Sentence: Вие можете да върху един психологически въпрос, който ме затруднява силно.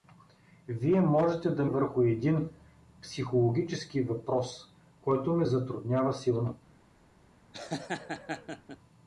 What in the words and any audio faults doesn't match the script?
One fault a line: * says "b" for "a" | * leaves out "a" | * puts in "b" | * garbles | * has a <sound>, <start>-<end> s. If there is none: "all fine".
* has a laugh, 7.5-8.8 s